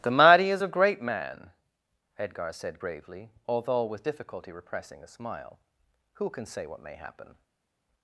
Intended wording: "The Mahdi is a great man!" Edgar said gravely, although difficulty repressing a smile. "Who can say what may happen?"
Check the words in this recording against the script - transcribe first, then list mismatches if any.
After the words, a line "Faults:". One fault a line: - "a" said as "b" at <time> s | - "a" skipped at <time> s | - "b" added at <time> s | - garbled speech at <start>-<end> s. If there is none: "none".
"The Mahdi is a great man!" Edgar said gravely, although with difficulty repressing a smile. "Who can say what may happen?"
Faults:
- "with" added at 3.8 s